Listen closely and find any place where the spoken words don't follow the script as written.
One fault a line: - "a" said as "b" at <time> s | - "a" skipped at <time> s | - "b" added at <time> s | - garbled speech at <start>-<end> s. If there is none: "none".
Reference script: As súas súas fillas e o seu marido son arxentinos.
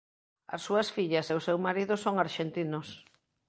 - "súas" skipped at 0.9 s